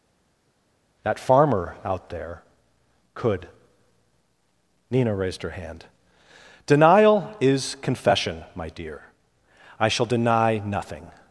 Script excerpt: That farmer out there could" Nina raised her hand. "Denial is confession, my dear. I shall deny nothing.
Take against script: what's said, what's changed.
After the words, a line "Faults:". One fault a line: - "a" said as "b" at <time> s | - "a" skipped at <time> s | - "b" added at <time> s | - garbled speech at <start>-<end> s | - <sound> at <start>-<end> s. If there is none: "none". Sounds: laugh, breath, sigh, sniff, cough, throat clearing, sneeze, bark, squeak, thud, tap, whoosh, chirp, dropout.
That farmer out there could" Nina raised her hand. "Denial is confession, my dear. I shall deny nothing.
Faults:
none